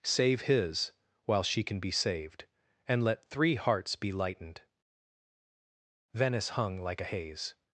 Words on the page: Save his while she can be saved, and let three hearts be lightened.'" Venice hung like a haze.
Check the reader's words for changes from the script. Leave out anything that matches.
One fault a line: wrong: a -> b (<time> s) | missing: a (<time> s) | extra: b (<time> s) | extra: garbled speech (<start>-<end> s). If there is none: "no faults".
no faults